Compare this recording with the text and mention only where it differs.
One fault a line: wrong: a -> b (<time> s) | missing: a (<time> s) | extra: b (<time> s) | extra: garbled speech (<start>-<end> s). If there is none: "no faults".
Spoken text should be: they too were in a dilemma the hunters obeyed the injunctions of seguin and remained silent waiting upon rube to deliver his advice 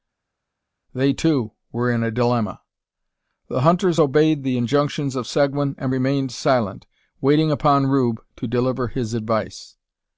no faults